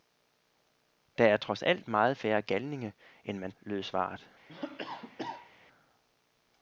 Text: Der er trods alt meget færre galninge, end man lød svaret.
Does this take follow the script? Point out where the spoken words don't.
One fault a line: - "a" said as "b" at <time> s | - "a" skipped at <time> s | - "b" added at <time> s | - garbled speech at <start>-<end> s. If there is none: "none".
none